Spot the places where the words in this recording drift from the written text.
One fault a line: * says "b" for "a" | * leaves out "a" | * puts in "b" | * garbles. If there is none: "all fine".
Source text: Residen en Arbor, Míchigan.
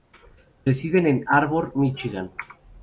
all fine